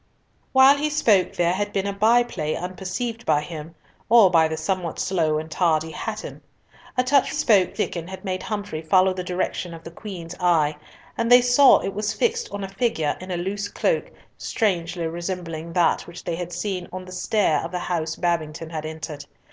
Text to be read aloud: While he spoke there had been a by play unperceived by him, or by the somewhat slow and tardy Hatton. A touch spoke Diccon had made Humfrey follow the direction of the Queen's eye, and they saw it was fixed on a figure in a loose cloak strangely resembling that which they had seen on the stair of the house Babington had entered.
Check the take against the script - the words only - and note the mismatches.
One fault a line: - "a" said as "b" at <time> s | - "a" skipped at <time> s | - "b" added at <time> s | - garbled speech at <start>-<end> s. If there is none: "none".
none